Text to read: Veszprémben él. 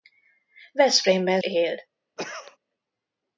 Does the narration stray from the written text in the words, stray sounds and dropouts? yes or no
yes